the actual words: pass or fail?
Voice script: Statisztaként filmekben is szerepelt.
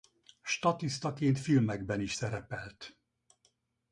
pass